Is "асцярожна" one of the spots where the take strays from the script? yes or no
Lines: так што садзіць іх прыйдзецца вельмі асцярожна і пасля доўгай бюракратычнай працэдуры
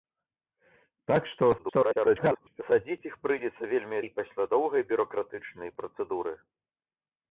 yes